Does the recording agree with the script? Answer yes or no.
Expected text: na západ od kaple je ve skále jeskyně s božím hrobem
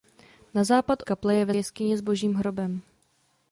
no